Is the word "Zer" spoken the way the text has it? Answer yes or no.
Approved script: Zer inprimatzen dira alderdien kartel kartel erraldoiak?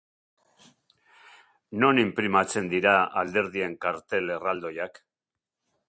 no